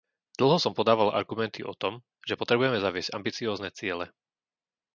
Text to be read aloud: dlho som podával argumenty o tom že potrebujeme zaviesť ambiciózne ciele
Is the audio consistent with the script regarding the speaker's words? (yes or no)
yes